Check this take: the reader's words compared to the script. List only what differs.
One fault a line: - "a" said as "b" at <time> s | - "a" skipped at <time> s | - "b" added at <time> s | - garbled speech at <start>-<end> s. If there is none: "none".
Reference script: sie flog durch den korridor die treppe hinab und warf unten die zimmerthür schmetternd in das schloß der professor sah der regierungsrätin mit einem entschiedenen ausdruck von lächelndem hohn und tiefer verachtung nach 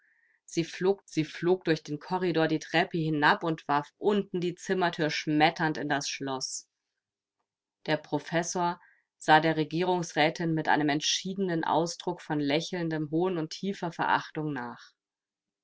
- "sie flog" added at 1.0 s